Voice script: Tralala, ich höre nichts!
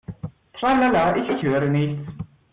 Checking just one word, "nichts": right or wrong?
right